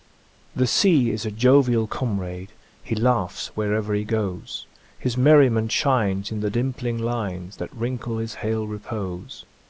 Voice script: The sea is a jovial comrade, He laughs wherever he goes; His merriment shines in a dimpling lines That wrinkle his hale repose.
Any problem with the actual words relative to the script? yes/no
yes